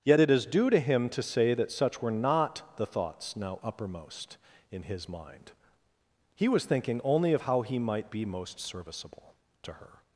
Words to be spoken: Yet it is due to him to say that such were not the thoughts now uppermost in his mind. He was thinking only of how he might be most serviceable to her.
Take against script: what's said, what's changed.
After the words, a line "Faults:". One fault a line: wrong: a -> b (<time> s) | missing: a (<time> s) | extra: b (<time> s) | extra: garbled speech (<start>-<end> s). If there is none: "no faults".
Yet it is due to him to say that such were not the thoughts now uppermost in his mind. He was thinking only of how he might be most serviceable to her.
Faults:
no faults